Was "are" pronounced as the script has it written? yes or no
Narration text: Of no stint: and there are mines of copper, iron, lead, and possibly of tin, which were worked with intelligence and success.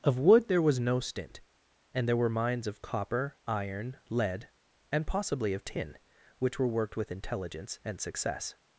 no